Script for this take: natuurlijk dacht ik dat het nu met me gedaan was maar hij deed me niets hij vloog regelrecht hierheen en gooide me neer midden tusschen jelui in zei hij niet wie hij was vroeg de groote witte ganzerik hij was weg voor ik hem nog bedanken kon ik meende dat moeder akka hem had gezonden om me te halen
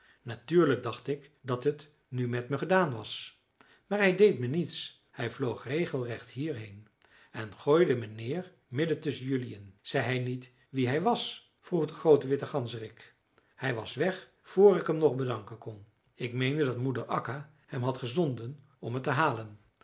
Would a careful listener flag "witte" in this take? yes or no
no